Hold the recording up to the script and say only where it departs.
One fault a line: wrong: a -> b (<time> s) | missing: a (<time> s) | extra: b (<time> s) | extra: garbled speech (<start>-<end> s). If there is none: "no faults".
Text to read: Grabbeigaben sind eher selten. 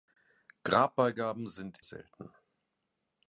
missing: eher (1.9 s)